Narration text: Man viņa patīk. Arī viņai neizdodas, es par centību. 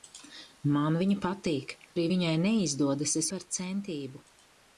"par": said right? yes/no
yes